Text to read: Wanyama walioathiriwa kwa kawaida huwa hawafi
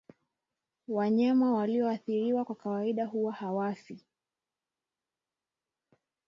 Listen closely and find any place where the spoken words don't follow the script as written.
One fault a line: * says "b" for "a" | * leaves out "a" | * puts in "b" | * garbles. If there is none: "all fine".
all fine